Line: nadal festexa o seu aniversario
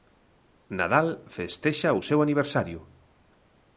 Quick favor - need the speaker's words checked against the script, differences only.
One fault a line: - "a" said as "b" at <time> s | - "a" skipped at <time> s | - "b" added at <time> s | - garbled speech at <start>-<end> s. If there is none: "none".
none